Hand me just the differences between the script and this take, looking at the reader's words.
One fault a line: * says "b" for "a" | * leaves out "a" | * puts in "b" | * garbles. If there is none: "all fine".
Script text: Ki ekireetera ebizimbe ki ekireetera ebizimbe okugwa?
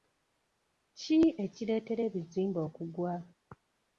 * leaves out "ki ekireetera ebizimbe"